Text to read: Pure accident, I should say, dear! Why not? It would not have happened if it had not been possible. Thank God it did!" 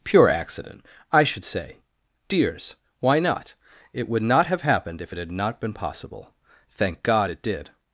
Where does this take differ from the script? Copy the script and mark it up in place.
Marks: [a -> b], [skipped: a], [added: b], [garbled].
Pure accident, I should say, [dear! -> dears] Why not? It would not have happened if it had not been possible. Thank God it did!"